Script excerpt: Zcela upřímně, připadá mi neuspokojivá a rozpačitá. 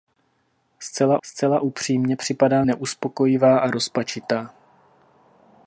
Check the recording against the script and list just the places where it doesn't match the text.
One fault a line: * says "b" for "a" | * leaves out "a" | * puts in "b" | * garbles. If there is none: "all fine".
* puts in "zcela"
* leaves out "mi"